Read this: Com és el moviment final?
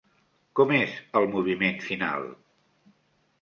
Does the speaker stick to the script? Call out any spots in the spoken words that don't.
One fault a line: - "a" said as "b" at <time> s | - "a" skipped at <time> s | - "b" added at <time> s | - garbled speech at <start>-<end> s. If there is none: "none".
none